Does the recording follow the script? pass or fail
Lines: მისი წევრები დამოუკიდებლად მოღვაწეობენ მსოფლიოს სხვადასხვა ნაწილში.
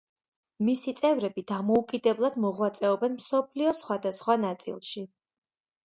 pass